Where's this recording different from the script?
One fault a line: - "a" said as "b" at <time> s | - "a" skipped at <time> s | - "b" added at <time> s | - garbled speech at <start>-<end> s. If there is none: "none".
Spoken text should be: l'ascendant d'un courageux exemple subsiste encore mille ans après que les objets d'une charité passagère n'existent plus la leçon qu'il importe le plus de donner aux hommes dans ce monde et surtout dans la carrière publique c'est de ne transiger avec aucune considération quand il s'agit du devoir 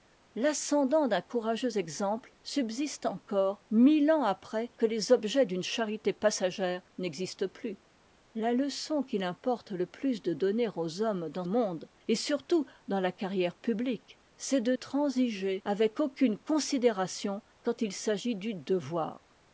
- "ce" skipped at 11.4 s
- "ne" skipped at 14.8 s